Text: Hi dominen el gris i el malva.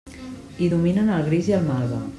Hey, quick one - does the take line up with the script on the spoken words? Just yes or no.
yes